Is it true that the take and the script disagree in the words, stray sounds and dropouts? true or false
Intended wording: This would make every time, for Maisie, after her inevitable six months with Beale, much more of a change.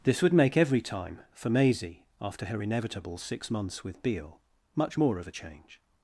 false